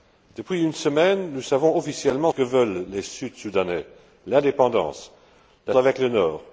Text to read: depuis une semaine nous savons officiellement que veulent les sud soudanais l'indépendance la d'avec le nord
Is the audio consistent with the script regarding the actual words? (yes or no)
yes